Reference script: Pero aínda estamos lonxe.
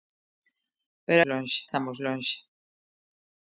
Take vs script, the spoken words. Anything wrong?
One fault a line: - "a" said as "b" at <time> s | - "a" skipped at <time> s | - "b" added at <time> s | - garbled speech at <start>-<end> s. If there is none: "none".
- "aínda" said as "lonxe" at 1.3 s